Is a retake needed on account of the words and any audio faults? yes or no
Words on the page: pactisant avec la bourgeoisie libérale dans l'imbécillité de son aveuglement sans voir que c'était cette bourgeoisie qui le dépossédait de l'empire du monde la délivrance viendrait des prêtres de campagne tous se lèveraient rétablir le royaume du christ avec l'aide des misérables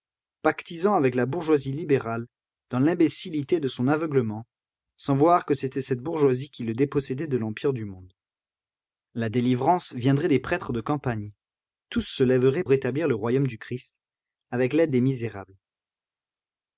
no